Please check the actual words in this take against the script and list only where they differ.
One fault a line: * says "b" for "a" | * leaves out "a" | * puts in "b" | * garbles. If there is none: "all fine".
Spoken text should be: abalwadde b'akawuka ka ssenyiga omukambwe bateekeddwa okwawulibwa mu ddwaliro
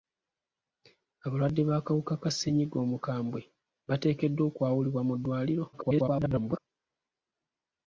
* garbles